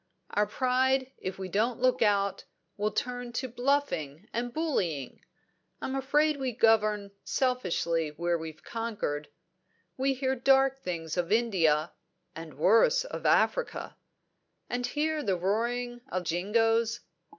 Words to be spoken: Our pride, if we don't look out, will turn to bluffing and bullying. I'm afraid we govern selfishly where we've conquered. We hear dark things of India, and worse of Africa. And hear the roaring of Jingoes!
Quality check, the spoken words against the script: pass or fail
pass